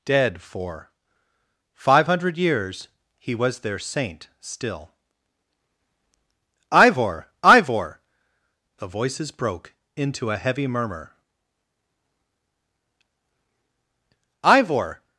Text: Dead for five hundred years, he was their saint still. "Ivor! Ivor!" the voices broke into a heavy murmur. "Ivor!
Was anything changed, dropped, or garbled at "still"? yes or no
no